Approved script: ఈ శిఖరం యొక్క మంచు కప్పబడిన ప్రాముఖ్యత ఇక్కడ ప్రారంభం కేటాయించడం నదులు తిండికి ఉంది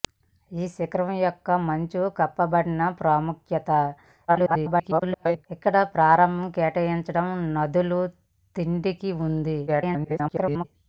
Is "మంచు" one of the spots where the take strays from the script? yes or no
no